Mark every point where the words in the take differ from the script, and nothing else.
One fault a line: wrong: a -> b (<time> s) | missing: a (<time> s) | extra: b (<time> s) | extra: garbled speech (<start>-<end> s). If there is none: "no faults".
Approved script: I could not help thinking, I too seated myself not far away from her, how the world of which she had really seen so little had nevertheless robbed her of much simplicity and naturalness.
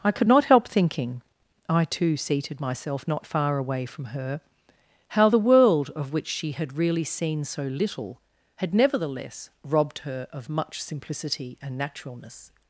no faults